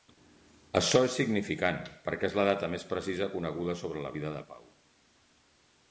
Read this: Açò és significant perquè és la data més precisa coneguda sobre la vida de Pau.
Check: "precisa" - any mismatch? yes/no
no